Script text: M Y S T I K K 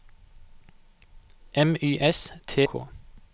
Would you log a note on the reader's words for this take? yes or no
yes